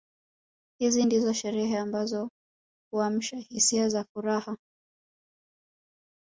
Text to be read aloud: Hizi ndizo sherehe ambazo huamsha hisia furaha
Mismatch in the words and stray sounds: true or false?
true